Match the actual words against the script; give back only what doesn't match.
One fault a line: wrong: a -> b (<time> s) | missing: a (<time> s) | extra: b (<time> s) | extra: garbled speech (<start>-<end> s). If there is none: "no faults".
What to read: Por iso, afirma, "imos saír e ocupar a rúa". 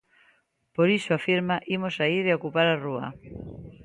no faults